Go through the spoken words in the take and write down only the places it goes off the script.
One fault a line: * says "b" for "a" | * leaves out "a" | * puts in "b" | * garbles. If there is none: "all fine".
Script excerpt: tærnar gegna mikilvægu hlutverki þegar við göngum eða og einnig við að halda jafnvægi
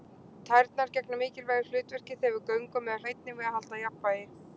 all fine